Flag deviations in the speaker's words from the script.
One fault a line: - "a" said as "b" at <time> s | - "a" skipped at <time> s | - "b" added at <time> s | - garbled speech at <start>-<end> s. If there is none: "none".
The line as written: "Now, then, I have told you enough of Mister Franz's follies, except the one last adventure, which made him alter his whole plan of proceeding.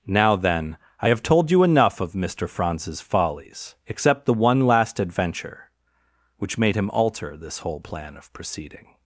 - "his" said as "this" at 7.3 s